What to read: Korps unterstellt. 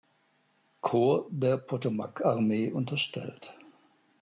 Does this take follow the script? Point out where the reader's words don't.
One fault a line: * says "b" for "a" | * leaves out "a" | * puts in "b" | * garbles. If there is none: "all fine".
* puts in "der Potomac Armee"